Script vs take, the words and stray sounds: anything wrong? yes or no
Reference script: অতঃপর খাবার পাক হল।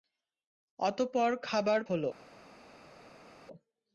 yes